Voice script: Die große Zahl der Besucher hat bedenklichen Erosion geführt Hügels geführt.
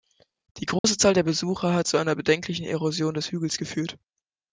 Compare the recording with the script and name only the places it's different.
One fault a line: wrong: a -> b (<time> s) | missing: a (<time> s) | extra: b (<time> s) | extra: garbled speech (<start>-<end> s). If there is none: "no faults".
extra: zu einer (1.8 s)
wrong: geführt -> des (3.1 s)